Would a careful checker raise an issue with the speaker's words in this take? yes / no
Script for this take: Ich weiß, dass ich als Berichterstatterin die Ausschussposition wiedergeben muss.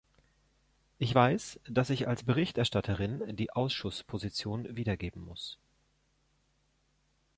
no